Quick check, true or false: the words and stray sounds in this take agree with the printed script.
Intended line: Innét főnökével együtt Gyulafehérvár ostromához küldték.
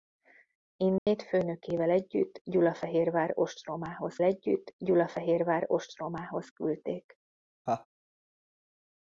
false